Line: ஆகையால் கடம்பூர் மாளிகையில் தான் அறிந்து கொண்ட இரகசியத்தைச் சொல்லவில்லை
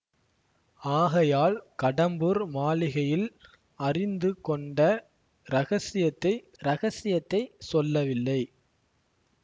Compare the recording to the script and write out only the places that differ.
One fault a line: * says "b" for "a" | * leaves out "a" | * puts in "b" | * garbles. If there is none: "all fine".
* leaves out "தான்"
* puts in "இரகசியத்தைச்"